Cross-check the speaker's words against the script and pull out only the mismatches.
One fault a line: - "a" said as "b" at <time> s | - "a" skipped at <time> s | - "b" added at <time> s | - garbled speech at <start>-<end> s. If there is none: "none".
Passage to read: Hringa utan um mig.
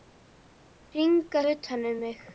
none